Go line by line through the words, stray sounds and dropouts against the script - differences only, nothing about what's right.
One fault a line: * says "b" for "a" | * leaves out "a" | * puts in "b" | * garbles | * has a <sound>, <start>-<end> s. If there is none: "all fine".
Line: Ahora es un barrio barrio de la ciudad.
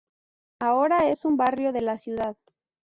* leaves out "barrio"